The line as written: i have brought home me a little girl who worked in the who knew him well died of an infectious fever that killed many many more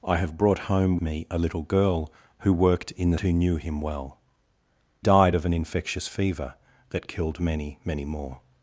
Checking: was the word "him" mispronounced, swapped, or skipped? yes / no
no